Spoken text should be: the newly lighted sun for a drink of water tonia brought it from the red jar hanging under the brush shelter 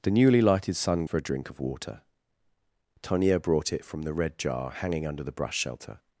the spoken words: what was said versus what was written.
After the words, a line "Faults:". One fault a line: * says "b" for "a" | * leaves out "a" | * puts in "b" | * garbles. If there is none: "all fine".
the newly lighted sun for a drink of water tonia brought it from the red jar hanging under the brush shelter
Faults:
all fine